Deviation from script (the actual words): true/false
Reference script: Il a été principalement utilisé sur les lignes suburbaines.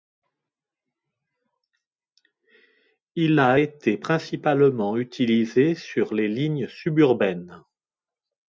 false